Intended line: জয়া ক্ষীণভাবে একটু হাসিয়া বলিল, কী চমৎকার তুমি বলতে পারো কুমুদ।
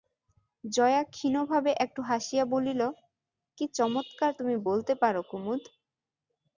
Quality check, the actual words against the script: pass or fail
pass